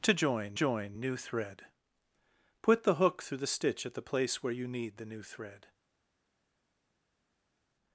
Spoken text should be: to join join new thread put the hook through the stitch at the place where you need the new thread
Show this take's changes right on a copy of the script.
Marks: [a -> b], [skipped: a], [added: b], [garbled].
to join join new thread put the hook through the stitch at the place where you need the new thread